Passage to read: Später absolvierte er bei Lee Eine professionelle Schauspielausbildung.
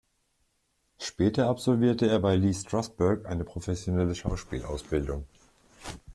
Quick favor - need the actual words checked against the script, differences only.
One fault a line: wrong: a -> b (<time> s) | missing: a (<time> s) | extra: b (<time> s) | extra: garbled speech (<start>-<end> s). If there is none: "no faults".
extra: Strasberg (2.5 s)